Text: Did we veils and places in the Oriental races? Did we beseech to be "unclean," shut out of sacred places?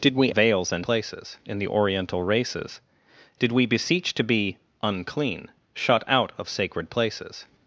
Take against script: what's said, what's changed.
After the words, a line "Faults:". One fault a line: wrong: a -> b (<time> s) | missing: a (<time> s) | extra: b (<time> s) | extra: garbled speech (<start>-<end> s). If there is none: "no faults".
Did we veils and places in the Oriental races? Did we beseech to be "unclean," shut out of sacred places?
Faults:
no faults